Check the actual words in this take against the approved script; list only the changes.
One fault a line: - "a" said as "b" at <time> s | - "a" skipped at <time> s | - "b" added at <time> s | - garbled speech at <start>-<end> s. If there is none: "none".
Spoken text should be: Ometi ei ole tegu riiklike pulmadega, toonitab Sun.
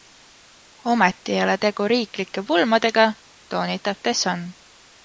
- "The" added at 4.0 s